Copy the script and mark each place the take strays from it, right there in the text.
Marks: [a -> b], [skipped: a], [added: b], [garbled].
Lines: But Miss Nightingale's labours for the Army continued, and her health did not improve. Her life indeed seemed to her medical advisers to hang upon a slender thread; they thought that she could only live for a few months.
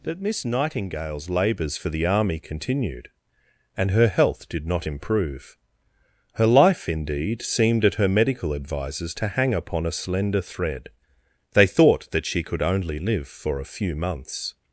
But Miss Nightingale's labours for the Army continued, and her health did not improve. Her life indeed seemed [to -> at] her medical advisers to hang upon a slender thread; they thought that she could only live for a few months.